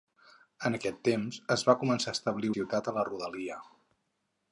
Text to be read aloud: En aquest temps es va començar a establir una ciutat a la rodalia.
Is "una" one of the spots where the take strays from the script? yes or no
yes